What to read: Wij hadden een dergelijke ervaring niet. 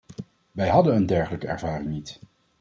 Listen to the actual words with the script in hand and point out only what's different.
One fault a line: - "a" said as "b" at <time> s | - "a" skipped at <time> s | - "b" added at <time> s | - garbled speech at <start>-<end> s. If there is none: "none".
none